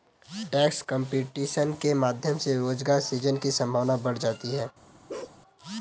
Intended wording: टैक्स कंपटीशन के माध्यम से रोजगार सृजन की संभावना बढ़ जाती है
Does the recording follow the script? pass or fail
pass